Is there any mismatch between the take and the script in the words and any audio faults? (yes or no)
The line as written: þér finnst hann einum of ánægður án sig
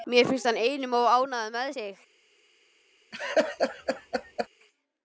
yes